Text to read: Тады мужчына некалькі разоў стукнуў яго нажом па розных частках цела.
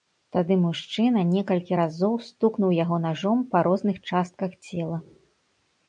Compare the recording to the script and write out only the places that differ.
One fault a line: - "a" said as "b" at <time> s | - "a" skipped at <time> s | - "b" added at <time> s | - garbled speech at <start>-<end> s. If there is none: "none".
none